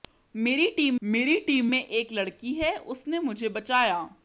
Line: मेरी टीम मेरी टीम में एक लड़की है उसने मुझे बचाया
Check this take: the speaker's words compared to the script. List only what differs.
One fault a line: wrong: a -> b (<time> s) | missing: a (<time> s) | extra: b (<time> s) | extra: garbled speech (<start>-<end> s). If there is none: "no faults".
no faults